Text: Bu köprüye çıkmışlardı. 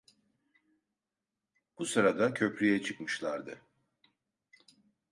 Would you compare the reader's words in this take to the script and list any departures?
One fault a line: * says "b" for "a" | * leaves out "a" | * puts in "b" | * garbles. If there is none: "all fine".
* puts in "sırada"